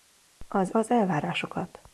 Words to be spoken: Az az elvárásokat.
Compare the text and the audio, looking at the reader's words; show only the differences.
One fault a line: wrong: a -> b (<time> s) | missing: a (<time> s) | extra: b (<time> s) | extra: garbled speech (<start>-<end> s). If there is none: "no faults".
no faults